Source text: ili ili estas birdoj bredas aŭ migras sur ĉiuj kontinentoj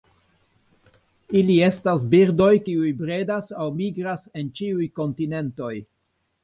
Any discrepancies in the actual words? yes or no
yes